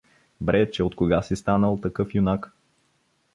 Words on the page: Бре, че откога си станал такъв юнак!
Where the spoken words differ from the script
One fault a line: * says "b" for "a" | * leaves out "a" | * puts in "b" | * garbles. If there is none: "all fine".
all fine